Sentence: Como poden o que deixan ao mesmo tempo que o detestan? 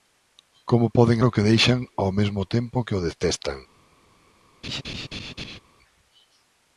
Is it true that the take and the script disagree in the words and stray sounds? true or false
true